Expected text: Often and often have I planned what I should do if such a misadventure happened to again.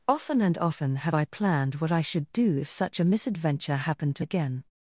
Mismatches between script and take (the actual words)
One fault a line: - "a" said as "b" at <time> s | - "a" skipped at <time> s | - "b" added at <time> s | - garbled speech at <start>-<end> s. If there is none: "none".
none